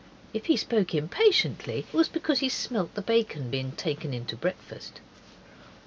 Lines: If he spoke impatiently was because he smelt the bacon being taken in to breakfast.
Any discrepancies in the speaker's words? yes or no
no